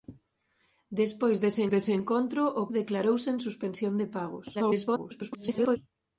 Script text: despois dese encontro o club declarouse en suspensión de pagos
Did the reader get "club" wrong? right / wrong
wrong